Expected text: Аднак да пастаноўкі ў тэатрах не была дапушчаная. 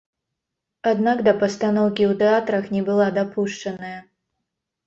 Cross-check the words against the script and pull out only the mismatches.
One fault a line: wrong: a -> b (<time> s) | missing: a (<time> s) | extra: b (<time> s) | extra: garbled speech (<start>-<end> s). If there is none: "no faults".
no faults